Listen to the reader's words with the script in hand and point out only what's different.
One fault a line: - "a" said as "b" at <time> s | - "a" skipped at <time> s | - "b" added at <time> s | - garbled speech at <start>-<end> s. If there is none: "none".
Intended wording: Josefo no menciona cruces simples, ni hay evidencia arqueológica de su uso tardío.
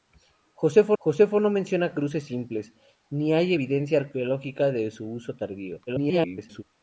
- "josefo" added at 1.0 s
- garbled speech at 5.9-6.6 s